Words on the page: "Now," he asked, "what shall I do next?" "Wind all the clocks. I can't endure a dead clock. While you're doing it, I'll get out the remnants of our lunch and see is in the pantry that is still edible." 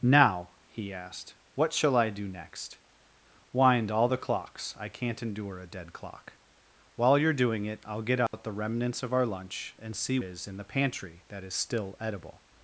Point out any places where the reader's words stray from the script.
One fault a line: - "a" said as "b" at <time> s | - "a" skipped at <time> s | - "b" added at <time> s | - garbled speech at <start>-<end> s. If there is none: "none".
none